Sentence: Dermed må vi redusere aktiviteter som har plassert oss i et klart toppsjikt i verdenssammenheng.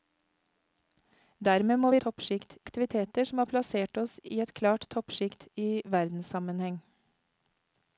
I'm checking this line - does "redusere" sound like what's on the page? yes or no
no